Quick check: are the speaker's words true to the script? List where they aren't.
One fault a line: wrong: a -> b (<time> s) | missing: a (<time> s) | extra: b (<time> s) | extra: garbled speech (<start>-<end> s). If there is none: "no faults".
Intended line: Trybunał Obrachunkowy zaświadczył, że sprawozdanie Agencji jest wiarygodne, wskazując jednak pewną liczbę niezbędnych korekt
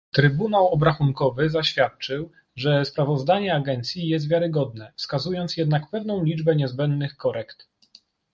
no faults